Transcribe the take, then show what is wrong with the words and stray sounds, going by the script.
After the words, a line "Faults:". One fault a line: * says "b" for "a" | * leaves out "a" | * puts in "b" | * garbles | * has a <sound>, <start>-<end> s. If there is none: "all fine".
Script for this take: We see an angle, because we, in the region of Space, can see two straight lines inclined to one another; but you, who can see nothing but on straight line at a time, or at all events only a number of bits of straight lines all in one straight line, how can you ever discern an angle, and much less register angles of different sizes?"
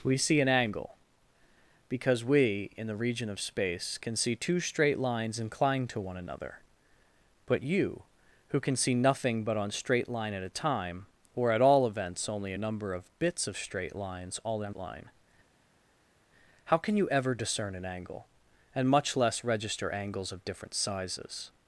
We see an angle, because we, in the region of Space, can see two straight lines inclined to one another; but you, who can see nothing but on straight line at a time, or at all events only a number of bits of straight lines all in line, how can you ever discern an angle, and much less register angles of different sizes?"
Faults:
* leaves out "one straight"